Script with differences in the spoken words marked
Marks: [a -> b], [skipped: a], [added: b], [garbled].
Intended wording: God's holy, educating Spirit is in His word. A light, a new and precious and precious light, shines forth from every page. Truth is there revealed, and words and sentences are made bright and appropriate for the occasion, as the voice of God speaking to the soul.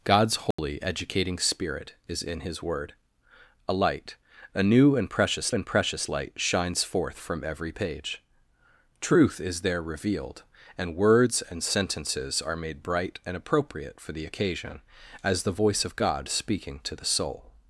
God's holy, educating Spirit is in His word. A light, a new and precious and precious light, shines forth from every page. Truth is there revealed, and words and sentences are made bright and appropriate for the occasion, as the voice of God speaking to the soul.